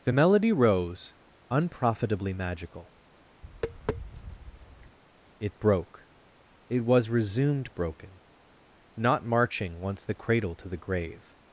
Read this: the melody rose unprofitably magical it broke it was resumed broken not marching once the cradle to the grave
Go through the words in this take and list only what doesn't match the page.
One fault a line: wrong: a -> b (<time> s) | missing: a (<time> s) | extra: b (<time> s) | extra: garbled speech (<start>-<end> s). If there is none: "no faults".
no faults